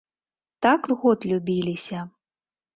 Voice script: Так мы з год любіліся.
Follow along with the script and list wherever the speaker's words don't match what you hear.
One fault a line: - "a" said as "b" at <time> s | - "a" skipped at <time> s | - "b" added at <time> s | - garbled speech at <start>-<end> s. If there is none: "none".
- "мы" skipped at 0.9 s